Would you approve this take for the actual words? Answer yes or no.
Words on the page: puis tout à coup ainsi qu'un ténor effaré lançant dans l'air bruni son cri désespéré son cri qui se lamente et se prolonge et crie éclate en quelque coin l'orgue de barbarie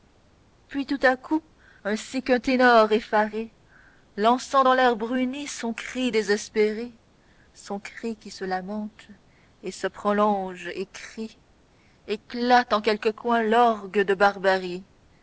yes